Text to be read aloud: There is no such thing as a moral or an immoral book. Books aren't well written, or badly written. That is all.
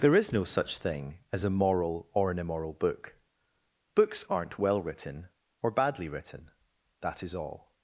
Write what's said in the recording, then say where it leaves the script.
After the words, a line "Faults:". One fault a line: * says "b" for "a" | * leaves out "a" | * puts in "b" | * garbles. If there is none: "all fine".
There is no such thing as a moral or an immoral book. Books aren't well written, or badly written. That is all.
Faults:
all fine